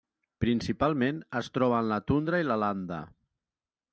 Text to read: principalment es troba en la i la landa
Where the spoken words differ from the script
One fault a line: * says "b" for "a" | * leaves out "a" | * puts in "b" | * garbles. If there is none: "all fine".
* puts in "tundra"